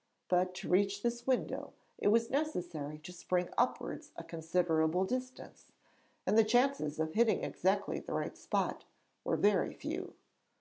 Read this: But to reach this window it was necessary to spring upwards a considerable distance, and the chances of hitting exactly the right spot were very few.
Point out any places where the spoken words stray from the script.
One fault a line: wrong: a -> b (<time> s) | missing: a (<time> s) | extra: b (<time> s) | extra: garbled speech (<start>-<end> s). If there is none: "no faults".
no faults